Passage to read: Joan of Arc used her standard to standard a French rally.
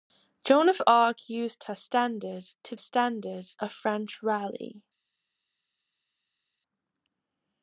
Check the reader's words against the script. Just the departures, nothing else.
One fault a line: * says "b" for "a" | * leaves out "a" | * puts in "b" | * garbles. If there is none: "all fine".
all fine